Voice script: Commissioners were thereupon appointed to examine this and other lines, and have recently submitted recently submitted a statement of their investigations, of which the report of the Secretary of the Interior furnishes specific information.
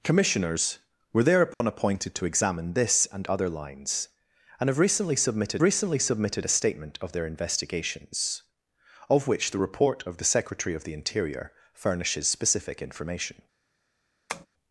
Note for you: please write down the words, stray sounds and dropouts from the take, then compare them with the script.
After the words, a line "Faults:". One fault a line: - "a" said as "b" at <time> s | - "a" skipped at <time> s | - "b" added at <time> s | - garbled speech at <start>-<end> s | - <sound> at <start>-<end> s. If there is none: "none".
Commissioners were thereupon appointed to examine this and other lines, and have recently submitted recently submitted a statement of their investigations, of which the report of the Secretary of the Interior furnishes specific information.
Faults:
- dropout at 1.5-1.6 s
- tap at 14.3-14.5 s